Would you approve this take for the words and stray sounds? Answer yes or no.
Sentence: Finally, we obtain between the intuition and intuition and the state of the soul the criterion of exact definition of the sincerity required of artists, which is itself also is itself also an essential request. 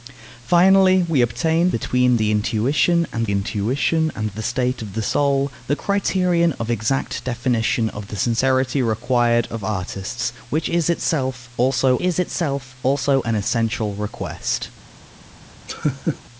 no